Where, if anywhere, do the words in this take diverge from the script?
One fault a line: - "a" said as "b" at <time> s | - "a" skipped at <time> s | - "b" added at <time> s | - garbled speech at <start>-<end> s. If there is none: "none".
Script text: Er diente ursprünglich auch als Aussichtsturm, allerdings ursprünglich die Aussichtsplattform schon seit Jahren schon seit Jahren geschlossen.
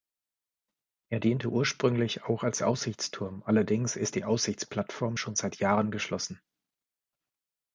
- "ursprünglich" said as "ist" at 4.0 s
- "schon seit Jahren" skipped at 5.9 s